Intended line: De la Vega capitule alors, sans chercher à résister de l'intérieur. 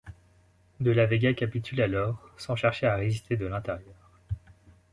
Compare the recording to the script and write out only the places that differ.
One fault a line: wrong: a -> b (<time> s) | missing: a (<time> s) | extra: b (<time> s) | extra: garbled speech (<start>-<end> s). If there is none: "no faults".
no faults